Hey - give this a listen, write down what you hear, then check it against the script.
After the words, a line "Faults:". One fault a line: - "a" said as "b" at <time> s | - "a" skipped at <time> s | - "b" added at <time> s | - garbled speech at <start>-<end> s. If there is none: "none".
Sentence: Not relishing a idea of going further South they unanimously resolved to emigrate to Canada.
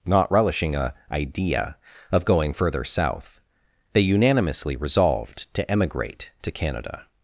Not relishing a idea of going further South they unanimously resolved to emigrate to Canada.
Faults:
none